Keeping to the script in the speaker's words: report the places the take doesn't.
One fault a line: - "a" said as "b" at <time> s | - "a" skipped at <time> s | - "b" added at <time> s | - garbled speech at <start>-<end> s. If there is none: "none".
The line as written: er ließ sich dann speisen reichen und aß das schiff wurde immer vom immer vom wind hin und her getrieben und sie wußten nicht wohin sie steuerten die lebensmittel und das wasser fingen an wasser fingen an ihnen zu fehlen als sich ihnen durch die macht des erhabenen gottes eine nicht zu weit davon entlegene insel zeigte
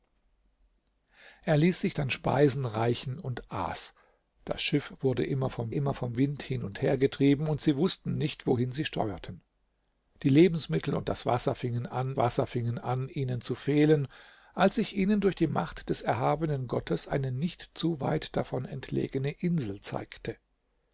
none